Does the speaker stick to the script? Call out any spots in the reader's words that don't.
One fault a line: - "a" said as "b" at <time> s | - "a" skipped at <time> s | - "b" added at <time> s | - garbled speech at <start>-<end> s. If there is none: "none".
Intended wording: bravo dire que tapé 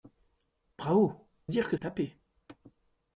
none